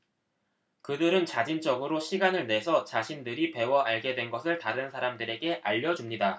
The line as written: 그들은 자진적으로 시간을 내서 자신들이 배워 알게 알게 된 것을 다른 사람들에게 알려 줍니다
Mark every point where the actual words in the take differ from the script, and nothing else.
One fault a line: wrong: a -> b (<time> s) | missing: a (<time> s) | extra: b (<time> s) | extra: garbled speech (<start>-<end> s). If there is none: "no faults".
missing: 알게 (4.1 s)